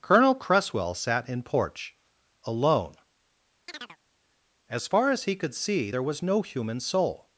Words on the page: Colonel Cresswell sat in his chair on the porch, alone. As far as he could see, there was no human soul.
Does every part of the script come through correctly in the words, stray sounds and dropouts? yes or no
no